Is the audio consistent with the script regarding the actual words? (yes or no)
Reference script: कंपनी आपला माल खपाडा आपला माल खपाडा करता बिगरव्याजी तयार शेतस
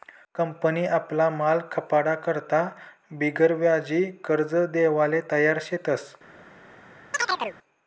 no